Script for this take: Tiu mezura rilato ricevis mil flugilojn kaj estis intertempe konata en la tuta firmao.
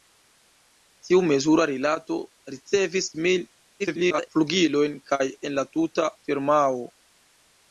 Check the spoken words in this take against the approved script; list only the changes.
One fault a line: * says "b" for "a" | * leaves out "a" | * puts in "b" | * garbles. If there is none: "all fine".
* garbles
* leaves out "estis intertempe konata"